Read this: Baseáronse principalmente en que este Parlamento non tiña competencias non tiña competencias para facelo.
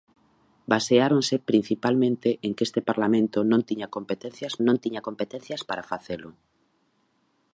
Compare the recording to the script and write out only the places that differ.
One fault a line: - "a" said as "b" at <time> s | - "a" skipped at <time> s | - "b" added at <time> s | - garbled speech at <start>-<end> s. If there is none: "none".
none